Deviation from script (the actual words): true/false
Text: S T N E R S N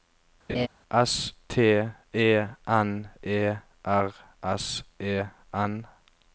true